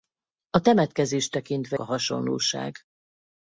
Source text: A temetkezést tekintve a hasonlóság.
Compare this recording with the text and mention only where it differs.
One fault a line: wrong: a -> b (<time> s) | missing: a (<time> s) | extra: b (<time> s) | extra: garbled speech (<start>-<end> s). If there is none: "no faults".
no faults